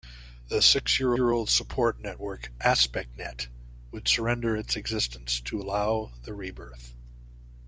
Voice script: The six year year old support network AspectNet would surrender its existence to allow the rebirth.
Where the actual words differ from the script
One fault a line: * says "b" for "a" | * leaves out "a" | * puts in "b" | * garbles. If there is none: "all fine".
all fine